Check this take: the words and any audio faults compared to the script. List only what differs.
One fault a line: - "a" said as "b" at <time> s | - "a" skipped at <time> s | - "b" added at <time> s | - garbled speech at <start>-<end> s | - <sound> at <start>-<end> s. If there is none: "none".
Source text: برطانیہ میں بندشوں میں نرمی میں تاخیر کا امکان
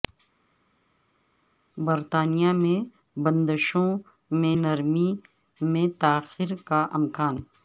none